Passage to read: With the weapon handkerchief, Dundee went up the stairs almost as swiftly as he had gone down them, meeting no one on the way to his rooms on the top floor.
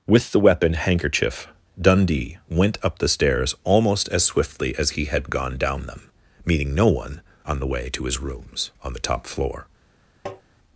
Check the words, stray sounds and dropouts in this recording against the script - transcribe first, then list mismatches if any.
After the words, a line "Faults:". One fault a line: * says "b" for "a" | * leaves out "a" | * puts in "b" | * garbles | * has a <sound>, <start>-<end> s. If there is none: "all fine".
With the weapon handkerchief, Dundee went up the stairs almost as swiftly as he had gone down them, meeting no one on the way to his rooms on the top floor.
Faults:
* has a tap, 10.3-10.4 s